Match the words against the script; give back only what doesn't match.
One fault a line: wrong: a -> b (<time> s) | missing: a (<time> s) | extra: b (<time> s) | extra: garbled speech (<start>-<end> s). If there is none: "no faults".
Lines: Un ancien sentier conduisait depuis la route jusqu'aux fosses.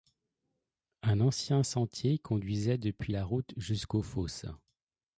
no faults